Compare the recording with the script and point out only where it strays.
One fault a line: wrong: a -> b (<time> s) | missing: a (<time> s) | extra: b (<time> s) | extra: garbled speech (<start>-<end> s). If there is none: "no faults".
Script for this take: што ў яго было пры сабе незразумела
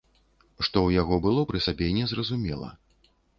no faults